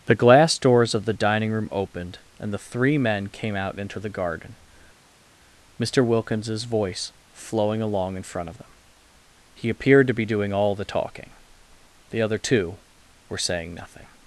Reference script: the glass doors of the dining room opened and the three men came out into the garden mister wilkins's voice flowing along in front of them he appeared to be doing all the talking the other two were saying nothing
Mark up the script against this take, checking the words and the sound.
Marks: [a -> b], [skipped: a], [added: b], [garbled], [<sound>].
the glass doors of the dining room opened and the three men came out into the garden mister wilkins's voice flowing along in front of them he appeared to be doing all the talking the other two were saying nothing